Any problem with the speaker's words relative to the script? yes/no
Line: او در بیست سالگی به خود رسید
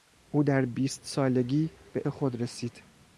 no